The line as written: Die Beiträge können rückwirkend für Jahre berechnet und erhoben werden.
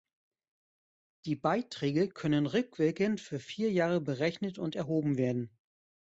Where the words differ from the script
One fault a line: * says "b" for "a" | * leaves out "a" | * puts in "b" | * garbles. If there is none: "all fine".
* puts in "vier"